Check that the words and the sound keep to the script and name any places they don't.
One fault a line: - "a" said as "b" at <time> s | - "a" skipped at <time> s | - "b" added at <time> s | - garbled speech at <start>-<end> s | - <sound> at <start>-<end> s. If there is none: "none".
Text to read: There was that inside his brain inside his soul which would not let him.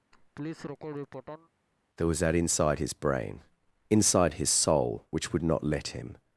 - laugh at 0.1-1.5 s